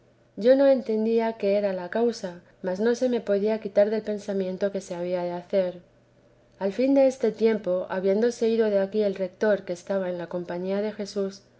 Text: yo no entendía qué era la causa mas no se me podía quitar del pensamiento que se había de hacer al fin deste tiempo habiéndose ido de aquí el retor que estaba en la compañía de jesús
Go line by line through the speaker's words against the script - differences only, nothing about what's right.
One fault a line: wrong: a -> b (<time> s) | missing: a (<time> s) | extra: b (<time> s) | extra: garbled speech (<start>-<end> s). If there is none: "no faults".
no faults